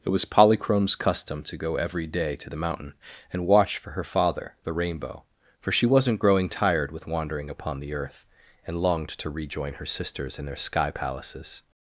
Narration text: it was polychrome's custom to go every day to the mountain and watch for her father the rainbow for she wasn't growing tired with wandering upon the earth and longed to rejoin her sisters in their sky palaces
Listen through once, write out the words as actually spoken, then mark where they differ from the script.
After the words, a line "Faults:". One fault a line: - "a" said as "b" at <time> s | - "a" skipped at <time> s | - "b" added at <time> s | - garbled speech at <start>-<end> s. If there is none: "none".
it was polychrome's custom to go every day to the mountain and watch for her father the rainbow for she wasn't growing tired with wandering upon the earth and longed to rejoin her sisters in their sky palaces
Faults:
none